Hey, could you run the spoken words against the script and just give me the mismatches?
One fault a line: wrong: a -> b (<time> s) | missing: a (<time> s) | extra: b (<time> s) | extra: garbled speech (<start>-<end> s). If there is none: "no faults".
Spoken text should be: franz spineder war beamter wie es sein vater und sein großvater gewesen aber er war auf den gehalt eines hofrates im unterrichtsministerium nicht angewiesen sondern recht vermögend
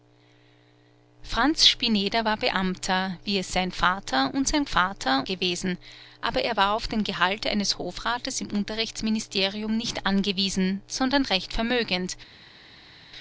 wrong: großvater -> vater (4.6 s)